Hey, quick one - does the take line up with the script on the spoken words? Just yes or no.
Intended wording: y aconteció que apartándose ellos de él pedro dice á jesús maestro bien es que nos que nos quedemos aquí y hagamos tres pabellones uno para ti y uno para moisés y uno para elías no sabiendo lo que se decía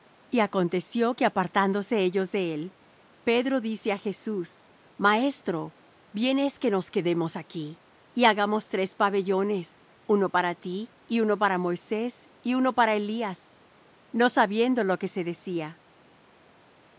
no